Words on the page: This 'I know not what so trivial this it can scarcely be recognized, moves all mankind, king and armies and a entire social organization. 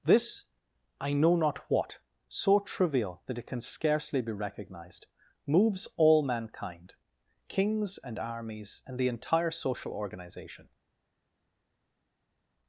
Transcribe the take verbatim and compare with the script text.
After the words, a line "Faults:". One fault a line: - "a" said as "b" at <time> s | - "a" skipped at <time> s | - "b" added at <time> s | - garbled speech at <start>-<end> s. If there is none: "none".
This 'I know not what so trivial that it can scarcely be recognized, moves all mankind, kings and armies and the entire social organization.
Faults:
- "this" said as "that" at 3.3 s
- "king" said as "kings" at 7.5 s
- "a" said as "the" at 9.0 s